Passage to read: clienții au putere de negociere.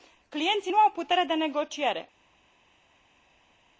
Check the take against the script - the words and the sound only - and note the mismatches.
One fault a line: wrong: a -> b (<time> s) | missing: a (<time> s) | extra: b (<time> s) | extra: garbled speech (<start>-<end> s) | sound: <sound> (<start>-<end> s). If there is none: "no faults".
extra: nu (0.7 s)